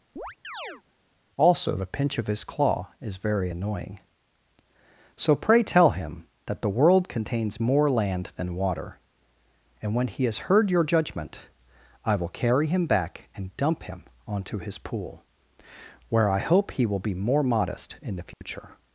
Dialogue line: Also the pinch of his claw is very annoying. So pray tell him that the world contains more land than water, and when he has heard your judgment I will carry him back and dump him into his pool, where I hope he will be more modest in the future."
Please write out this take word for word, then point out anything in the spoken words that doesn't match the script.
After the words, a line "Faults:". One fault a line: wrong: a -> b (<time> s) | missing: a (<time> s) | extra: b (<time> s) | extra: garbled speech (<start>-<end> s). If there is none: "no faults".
Also the pinch of his claw is very annoying. So pray tell him that the world contains more land than water, and when he has heard your judgment I will carry him back and dump him onto his pool, where I hope he will be more modest in the future."
Faults:
wrong: into -> onto (14.3 s)